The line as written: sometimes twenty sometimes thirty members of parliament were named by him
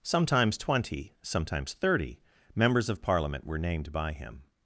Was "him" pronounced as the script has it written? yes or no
yes